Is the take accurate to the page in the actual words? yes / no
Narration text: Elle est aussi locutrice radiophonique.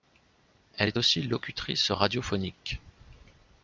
yes